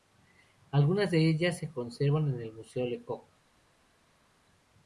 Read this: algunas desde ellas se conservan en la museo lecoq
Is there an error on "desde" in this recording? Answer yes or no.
yes